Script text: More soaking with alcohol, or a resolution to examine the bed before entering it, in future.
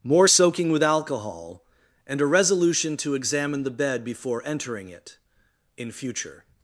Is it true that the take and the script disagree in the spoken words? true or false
true